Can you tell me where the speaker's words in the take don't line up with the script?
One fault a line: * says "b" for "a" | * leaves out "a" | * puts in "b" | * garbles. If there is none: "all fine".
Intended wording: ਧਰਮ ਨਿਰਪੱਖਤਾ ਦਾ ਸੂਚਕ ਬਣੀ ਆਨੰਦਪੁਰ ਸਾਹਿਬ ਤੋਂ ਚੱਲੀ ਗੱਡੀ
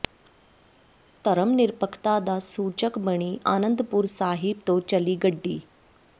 all fine